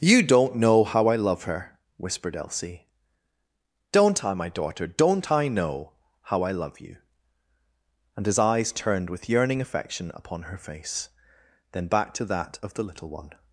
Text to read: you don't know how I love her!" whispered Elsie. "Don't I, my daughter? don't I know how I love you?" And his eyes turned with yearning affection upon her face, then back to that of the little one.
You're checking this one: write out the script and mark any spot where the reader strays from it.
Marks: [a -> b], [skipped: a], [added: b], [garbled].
you don't know how I love her!" whispered Elsie. "Don't I, my daughter? don't I know how I love you?" And his eyes turned with yearning affection upon her face, then back to that of the little one.